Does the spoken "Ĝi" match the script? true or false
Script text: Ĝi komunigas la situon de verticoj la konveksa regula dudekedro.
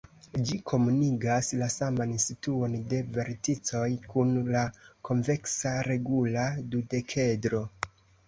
true